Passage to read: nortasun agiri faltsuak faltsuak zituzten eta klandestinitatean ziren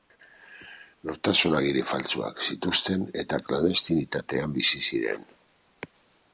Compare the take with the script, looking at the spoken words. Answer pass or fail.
fail